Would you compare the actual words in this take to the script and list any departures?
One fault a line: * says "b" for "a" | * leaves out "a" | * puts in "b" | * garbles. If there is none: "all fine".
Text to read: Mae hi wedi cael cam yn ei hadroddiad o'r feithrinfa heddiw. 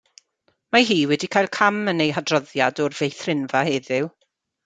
all fine